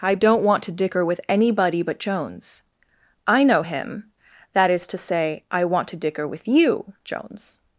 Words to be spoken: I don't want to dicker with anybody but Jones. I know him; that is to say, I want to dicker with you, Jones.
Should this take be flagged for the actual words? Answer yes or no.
no